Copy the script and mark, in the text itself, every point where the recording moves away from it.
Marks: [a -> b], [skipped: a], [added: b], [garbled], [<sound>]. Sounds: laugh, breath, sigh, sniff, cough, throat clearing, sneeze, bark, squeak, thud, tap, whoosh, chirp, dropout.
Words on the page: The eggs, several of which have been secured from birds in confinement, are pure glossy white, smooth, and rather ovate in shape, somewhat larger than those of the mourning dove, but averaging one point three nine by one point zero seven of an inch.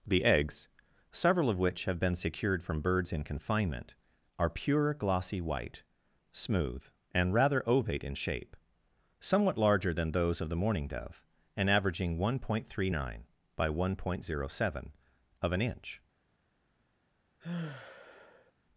The eggs, several of which have been secured from birds in confinement, are pure glossy white, smooth, and rather ovate in shape, somewhat larger than those of the mourning dove, [but -> and] averaging one point three nine by one point zero seven of an inch. [sigh]